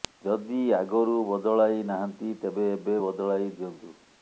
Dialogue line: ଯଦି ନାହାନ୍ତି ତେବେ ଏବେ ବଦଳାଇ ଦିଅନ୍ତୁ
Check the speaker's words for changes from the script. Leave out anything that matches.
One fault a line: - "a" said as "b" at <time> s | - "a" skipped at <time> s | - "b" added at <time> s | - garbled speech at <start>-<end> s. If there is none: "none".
- "ଆଗରୁ ବଦଳାଇ" added at 0.8 s